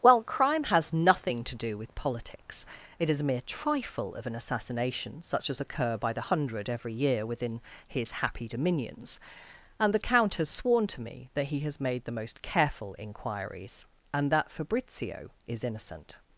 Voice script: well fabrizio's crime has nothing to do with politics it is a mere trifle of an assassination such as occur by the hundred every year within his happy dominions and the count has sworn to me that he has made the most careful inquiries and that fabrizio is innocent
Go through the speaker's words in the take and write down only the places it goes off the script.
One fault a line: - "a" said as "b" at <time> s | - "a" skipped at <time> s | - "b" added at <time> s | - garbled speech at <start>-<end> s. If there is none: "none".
- "fabrizio's" skipped at 0.2 s